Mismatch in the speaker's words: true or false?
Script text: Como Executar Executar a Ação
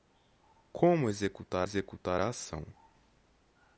false